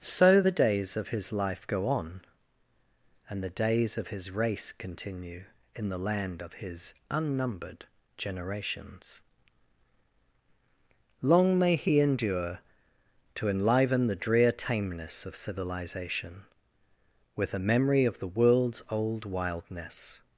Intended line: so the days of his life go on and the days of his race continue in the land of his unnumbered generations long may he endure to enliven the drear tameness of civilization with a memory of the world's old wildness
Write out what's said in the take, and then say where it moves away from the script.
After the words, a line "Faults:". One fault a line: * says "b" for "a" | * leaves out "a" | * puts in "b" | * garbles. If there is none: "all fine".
so the days of his life go on and the days of his race continue in the land of his unnumbered generations long may he endure to enliven the drear tameness of civilization with a memory of the world's old wildness
Faults:
all fine